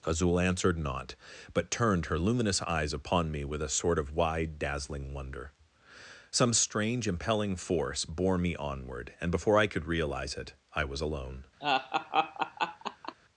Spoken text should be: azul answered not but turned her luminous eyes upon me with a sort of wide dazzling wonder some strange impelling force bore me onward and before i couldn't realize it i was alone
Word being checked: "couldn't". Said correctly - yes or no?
no